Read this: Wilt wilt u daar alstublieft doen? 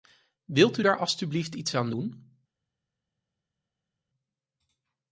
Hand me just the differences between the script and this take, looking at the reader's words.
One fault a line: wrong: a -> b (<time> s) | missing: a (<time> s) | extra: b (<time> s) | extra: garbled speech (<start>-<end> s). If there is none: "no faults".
missing: wilt (0.8 s)
extra: iets aan (1.5 s)